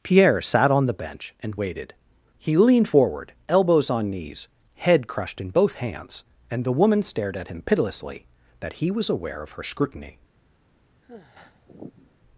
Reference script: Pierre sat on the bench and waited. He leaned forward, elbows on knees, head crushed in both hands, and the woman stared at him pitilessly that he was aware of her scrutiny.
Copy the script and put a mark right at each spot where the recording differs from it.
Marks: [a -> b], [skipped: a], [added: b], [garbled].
Pierre sat on the bench and waited. He leaned forward, elbows on knees, head crushed in both hands, and the woman stared at him pitilessly that he was aware of her scrutiny.